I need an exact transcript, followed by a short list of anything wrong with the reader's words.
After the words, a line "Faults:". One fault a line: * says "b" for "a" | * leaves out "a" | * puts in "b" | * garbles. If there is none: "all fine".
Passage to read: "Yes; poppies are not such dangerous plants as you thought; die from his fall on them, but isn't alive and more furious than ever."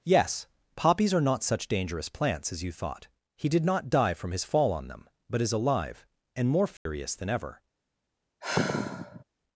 "Yes; poppies are not such dangerous plants as you thought; he did not die from his fall on them, but is alive and more furious than ever."
Faults:
* puts in "he did not"
* says "is" for "isn't"